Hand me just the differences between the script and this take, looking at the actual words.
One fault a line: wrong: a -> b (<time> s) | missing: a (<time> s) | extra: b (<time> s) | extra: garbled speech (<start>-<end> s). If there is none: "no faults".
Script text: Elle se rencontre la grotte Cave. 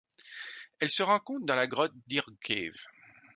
extra: dans (1.4 s)
extra: Deer (2.1 s)